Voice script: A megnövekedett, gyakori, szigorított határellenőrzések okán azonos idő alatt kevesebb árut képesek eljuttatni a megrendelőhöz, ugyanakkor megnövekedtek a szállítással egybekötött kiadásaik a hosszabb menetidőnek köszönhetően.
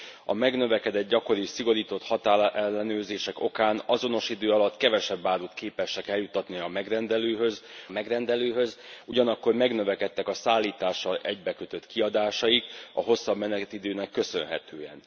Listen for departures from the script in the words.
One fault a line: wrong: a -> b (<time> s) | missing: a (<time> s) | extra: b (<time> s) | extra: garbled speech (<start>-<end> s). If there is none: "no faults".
extra: megrendelőhöz (7.9 s)